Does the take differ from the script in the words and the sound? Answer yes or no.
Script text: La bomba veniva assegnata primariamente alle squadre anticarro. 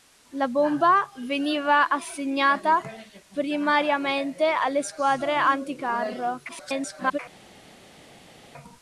yes